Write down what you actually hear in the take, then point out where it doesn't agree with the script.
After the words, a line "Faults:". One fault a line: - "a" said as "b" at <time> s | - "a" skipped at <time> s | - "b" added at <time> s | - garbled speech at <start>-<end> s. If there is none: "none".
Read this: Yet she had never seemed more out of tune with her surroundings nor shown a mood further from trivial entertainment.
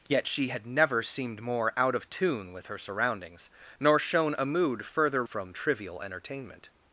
Yet she had never seemed more out of tune with her surroundings nor shown a mood further from trivial entertainment.
Faults:
none